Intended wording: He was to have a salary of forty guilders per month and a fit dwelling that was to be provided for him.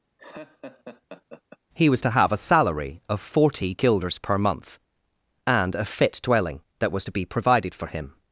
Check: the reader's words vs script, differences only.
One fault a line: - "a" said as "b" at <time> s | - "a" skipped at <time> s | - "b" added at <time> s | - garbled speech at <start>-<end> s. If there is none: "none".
none